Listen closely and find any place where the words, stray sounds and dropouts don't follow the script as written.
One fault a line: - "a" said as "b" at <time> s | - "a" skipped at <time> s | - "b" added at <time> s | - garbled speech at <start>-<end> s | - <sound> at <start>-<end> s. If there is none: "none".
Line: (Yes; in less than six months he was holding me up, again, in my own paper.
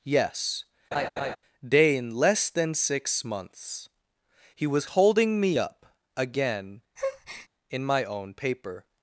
- laugh at 0.9-1.4 s
- "day" added at 1.7 s
- breath at 7.0-7.5 s